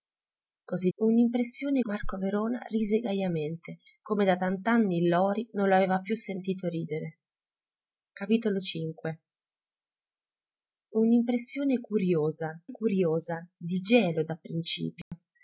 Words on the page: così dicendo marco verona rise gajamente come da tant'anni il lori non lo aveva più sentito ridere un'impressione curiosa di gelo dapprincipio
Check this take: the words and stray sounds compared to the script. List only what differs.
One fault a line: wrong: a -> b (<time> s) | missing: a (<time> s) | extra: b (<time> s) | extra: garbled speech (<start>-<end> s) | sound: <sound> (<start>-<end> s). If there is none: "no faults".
wrong: dicendo -> un'impressione (1.0 s)
extra: curiosa (12.7 s)
sound: dropout (15.0-15.1 s)